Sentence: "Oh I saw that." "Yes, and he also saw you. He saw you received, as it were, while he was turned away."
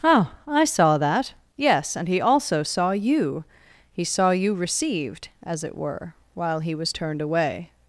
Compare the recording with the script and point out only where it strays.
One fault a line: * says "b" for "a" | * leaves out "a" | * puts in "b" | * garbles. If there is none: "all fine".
all fine